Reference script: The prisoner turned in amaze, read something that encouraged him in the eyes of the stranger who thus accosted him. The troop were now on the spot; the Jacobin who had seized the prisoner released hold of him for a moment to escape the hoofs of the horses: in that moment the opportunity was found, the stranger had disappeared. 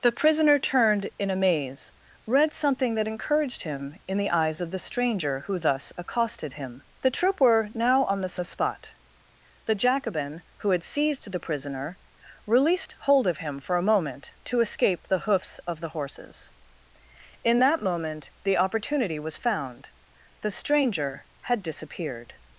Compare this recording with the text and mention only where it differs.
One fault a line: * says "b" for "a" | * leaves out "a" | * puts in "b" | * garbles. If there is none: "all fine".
* puts in "the"